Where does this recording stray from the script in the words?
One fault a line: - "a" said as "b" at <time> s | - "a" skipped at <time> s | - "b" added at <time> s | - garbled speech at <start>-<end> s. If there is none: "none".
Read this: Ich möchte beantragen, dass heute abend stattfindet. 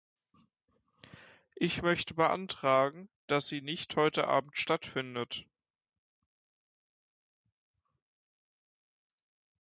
- "sie nicht" added at 3.5 s